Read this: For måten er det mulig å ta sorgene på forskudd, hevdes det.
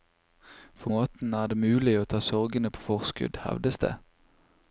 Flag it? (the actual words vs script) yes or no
no